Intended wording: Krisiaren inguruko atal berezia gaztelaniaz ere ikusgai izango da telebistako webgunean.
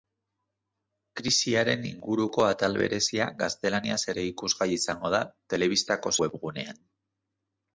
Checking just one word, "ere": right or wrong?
right